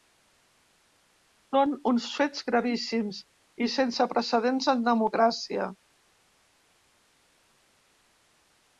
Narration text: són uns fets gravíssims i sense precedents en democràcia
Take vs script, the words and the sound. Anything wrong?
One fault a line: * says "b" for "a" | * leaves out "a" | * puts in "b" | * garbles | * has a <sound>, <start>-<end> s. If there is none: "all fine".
all fine